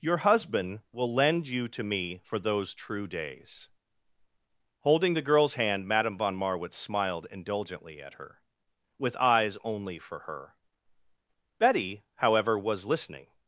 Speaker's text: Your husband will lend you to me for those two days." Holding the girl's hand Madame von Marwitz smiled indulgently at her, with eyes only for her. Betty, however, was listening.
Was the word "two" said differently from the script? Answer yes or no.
yes